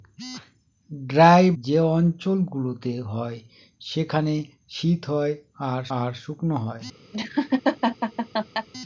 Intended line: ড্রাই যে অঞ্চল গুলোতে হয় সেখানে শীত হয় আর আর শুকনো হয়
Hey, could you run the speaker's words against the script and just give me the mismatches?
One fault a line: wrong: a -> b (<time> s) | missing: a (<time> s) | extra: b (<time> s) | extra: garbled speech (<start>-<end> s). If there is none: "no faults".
no faults